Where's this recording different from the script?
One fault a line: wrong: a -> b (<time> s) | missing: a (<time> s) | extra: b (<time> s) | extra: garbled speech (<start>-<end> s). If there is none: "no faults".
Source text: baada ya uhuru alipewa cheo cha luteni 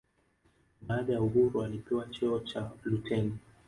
no faults